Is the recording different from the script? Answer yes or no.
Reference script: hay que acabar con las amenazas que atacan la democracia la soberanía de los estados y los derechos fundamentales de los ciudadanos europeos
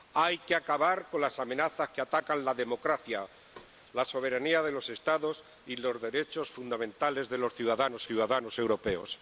yes